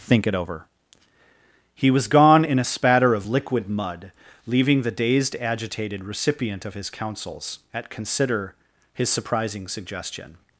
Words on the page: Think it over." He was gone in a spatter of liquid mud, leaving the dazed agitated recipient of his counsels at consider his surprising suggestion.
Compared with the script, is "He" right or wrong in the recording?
right